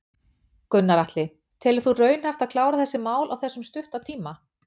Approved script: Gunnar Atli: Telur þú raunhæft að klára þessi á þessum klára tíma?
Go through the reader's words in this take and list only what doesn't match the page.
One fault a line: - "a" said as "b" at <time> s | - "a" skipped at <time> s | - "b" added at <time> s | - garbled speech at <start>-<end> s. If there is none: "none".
- "mál" added at 3.1 s
- "klára" said as "stutta" at 3.7 s